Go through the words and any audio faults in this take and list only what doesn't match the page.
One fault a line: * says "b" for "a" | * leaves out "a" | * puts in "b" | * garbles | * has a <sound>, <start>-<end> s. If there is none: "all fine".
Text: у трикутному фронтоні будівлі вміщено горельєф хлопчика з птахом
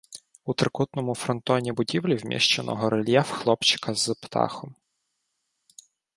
all fine